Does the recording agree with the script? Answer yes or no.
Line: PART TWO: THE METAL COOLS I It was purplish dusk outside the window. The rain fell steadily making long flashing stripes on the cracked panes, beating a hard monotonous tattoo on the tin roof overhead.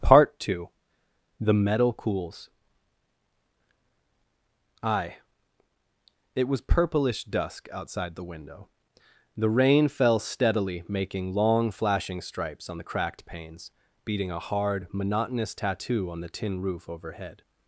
yes